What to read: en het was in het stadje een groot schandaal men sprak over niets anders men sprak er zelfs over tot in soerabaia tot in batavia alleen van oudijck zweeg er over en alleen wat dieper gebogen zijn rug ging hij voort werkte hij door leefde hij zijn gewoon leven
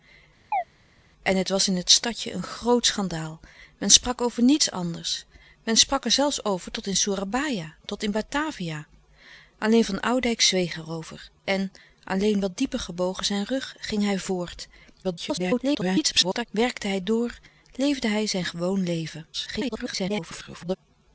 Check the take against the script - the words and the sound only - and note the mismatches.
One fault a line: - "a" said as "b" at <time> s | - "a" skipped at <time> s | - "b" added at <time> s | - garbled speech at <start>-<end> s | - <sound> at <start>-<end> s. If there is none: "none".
- chirp at 0.5-0.6 s
- garbled speech at 15.0-16.5 s
- garbled speech at 19.3-20.8 s